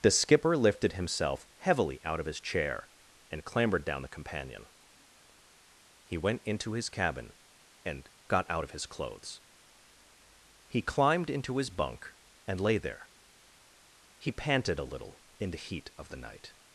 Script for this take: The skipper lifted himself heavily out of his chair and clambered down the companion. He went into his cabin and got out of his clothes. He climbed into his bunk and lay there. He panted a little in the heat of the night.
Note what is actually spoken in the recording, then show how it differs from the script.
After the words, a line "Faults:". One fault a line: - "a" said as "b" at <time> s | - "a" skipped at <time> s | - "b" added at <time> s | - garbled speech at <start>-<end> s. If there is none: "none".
The skipper lifted himself heavily out of his chair and clambered down the companion. He went into his cabin and got out of his clothes. He climbed into his bunk and lay there. He panted a little in the heat of the night.
Faults:
none